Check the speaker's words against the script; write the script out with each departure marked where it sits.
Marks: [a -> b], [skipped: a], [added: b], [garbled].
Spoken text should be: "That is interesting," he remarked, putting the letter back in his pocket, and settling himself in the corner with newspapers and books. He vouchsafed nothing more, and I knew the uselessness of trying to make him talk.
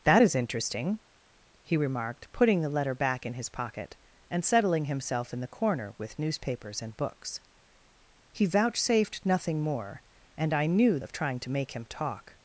"That is interesting," he remarked, putting the letter back in his pocket, and settling himself in the corner with newspapers and books. He vouchsafed nothing more, and I knew [skipped: the uselessness] of trying to make him talk.